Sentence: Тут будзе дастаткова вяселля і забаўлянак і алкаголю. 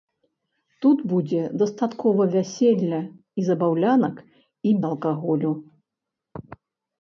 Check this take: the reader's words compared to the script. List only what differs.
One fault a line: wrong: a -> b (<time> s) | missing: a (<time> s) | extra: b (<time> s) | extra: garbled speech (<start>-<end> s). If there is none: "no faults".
no faults